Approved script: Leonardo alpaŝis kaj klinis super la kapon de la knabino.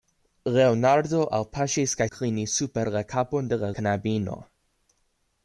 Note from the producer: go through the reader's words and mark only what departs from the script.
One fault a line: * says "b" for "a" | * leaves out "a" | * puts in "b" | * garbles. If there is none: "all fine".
all fine